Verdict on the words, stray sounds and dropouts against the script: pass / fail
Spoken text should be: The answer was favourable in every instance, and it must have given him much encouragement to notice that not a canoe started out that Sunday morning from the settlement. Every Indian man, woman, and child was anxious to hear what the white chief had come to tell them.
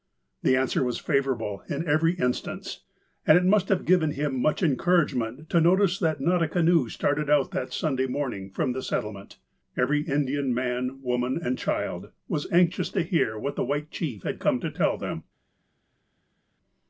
pass